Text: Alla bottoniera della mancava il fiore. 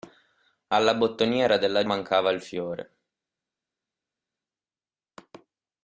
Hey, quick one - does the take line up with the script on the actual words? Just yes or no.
yes